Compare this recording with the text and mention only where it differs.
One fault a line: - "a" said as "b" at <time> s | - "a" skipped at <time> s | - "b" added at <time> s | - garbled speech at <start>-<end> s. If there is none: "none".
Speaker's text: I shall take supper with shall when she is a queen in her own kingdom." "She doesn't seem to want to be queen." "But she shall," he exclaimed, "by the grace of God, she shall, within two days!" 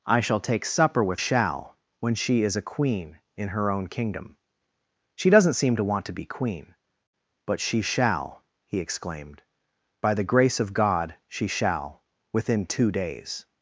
none